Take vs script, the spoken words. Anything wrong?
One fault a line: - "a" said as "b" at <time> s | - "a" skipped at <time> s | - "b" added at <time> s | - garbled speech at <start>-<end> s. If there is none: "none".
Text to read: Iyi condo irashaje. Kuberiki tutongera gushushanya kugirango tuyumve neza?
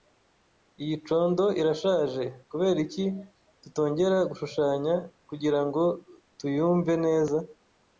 none